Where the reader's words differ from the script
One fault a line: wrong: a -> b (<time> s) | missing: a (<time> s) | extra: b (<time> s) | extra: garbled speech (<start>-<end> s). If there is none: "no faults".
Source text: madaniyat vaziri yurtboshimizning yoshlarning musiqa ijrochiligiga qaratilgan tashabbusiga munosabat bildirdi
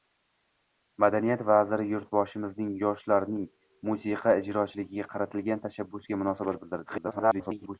extra: garbled speech (6.9-7.8 s)